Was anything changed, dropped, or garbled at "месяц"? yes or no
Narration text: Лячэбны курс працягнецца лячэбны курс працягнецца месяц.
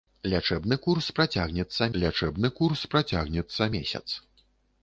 no